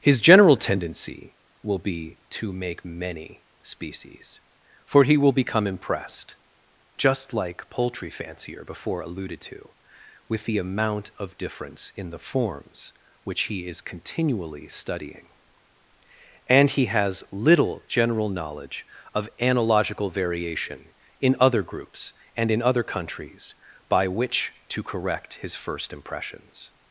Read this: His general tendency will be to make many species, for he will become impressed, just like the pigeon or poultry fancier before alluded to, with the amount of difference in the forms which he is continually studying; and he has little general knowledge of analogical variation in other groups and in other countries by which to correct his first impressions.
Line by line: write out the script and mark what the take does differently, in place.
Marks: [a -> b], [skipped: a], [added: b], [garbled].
His general tendency will be to make many species, for he will become impressed, just like [skipped: the pigeon or] poultry fancier before alluded to, with the amount of difference in the forms which he is continually studying; and he has little general knowledge of analogical variation in other groups and in other countries by which to correct his first impressions.